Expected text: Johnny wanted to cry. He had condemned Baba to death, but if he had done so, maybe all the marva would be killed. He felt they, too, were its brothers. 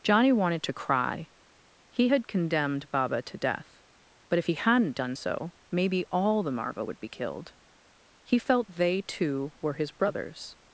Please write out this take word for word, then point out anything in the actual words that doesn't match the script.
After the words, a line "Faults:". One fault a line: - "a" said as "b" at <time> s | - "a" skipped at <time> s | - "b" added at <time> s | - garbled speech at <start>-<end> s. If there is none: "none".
Johnny wanted to cry. He had condemned Baba to death, but if he hadn't done so, maybe all the marva would be killed. He felt they, too, were his brothers.
Faults:
- "had" said as "hadn't" at 4.5 s
- "its" said as "his" at 9.7 s